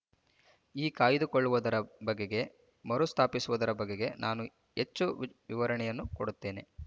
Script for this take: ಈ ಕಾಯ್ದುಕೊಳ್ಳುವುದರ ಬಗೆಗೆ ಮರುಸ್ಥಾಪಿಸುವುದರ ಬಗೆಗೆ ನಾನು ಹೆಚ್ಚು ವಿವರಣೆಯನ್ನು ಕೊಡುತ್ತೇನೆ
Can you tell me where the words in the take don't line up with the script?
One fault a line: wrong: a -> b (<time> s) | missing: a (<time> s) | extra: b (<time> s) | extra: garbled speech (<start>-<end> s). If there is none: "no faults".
no faults